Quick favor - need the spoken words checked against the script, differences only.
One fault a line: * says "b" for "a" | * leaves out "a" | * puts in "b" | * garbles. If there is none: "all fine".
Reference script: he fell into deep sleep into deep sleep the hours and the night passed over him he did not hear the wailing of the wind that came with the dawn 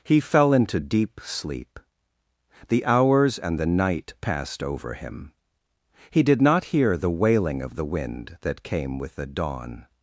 * leaves out "into deep sleep"